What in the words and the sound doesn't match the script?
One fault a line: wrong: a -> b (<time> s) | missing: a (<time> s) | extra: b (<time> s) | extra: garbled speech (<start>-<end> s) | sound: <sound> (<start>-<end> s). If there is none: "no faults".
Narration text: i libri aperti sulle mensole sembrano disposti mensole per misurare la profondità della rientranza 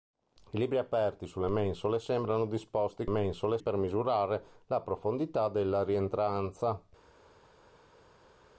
no faults